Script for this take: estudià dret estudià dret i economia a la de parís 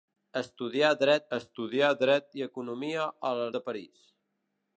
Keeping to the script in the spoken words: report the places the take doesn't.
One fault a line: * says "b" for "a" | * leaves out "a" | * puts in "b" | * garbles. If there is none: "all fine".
all fine